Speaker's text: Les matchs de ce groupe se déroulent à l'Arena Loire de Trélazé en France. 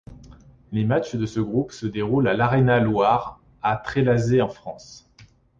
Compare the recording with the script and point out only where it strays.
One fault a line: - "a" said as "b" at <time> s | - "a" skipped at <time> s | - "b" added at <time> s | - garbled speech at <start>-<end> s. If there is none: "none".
- "de" said as "à" at 3.6 s